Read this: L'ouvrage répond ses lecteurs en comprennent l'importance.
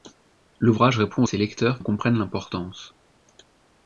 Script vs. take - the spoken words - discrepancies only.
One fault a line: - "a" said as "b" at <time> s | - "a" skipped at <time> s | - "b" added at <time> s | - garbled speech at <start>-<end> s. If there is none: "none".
none